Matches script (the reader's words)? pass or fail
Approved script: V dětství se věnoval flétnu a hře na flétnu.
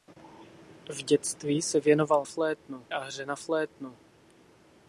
pass